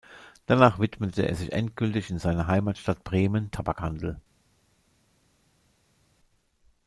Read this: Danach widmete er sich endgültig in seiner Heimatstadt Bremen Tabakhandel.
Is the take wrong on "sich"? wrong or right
right